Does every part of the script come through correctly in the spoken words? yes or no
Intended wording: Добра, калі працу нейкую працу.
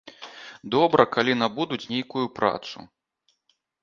no